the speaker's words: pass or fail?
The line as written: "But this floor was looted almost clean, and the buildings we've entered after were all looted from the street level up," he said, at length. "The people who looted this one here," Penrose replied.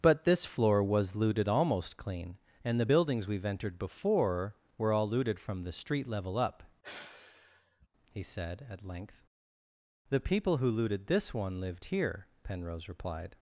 fail